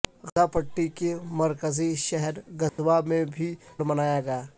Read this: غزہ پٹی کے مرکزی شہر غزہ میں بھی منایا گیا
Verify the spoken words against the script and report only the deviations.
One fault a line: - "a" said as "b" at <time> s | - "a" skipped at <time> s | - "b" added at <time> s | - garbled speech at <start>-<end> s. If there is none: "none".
none